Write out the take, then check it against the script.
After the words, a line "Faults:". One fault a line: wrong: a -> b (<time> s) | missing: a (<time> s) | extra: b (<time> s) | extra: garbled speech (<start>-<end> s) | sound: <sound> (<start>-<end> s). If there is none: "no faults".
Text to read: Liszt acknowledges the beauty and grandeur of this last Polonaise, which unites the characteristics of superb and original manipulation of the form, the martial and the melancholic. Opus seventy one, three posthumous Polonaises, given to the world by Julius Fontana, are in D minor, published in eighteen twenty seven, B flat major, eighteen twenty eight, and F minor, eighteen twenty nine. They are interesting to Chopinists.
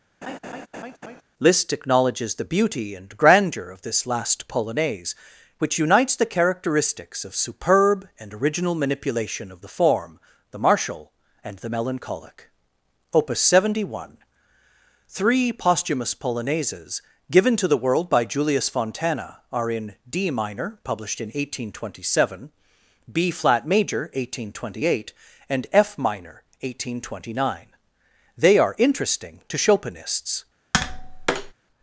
Liszt acknowledges the beauty and grandeur of this last Polonaise, which unites the characteristics of superb and original manipulation of the form, the martial and the melancholic. Opus seventy one, three posthumous Polonaises, given to the world by Julius Fontana, are in D minor, published in eighteen twenty seven, B flat major, eighteen twenty eight, and F minor, eighteen twenty nine. They are interesting to Chopinists.
Faults:
sound: laugh (0.2-1.2 s)
sound: tap (30.7-31.5 s)